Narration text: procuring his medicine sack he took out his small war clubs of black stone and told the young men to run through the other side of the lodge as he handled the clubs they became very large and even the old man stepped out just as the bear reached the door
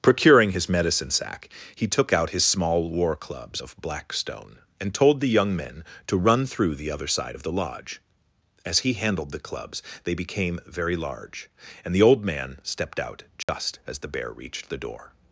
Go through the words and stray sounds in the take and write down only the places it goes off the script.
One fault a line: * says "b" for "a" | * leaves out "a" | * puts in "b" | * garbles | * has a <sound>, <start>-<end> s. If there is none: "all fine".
* leaves out "even"
* has a dropout, 13.4-13.5 s